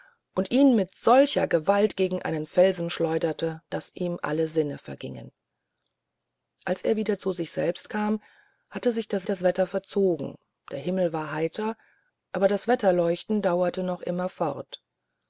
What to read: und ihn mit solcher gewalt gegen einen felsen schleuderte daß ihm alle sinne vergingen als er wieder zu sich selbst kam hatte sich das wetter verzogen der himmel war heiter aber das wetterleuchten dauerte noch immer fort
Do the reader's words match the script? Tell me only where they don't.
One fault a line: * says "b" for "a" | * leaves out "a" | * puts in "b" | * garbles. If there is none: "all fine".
* puts in "das"